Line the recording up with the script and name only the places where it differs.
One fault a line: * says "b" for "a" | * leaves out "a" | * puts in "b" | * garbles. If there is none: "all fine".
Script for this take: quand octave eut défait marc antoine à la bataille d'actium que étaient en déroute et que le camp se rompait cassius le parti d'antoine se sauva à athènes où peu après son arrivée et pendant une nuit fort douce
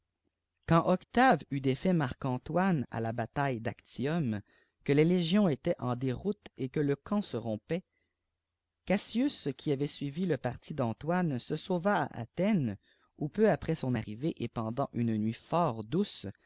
* puts in "les légions"
* puts in "qui avait suivi"